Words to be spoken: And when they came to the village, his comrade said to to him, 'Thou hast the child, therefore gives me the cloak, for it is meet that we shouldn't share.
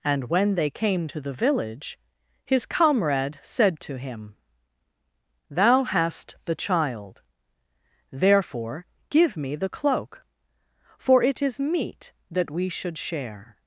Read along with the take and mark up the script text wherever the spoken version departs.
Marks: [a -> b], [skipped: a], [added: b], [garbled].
And when they came to the village, his comrade said to [skipped: to] him, 'Thou hast the child, therefore [gives -> give] me the cloak, for it is meet that we [shouldn't -> should] share.